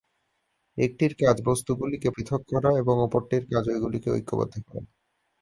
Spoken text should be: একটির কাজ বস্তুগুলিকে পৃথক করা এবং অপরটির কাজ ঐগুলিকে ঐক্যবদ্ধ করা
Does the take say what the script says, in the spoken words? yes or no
yes